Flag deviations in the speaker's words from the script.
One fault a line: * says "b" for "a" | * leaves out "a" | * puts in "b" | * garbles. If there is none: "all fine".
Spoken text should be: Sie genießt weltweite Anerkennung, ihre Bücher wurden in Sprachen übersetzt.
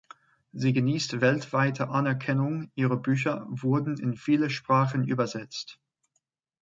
* puts in "viele"